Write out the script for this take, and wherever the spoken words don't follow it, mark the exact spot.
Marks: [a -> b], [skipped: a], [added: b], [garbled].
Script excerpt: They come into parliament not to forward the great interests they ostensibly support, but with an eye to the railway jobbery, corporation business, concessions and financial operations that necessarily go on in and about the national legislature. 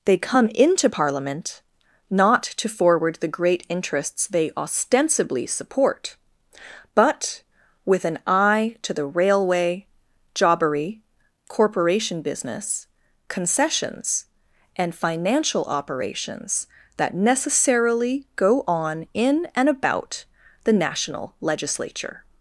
They come into parliament not to forward the great interests they ostensibly support, but with an eye to the railway jobbery, corporation business, concessions and financial operations that necessarily go on in and about the national legislature.